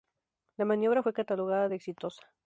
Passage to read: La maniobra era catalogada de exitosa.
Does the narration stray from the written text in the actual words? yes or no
yes